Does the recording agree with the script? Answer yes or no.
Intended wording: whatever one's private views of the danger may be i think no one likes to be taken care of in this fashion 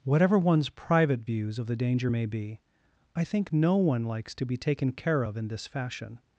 yes